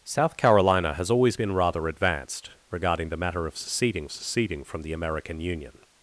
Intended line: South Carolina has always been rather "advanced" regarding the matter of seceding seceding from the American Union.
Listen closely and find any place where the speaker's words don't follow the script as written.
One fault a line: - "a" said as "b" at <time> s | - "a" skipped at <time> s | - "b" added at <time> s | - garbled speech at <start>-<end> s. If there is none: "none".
none